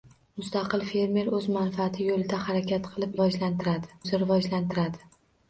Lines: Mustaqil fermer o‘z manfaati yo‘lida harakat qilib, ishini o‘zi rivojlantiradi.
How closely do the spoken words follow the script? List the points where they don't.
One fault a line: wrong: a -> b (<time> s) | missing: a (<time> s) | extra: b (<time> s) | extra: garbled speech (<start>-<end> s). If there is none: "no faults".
wrong: ishini -> rivojlantiradi (3.2 s)